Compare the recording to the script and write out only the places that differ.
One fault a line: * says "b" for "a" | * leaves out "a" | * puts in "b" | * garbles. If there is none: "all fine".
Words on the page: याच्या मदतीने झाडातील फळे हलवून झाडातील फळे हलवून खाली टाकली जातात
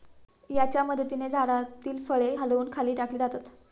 * leaves out "झाडातील फळे हलवून"